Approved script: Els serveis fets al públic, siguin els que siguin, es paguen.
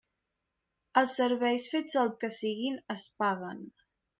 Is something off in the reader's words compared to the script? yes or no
yes